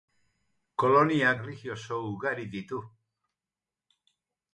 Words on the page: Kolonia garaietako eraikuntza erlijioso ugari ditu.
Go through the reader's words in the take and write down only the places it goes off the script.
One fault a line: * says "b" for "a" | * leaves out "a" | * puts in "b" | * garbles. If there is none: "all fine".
* leaves out "garaietako eraikuntza"